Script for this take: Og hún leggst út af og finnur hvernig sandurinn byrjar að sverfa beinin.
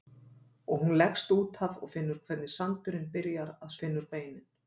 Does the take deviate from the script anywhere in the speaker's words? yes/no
yes